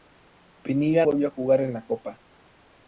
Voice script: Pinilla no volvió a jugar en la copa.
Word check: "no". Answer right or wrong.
wrong